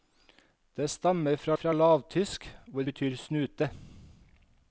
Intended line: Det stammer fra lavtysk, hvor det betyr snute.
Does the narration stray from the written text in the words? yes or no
yes